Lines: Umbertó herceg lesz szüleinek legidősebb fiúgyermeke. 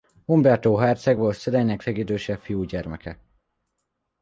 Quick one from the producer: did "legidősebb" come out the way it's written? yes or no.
yes